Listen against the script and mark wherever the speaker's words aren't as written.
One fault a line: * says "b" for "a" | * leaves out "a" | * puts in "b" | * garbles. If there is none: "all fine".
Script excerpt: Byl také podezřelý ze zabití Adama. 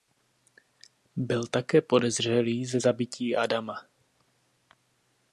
all fine